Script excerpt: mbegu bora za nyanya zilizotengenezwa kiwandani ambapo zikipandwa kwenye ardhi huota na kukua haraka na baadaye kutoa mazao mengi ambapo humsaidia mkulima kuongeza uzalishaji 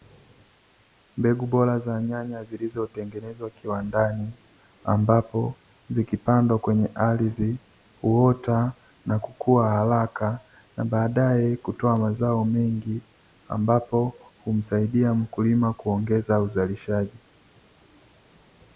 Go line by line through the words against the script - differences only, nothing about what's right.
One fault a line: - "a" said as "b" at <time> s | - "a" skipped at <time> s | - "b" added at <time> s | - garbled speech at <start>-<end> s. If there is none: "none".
none